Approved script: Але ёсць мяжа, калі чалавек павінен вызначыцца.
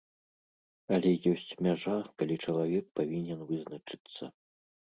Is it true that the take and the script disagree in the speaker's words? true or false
false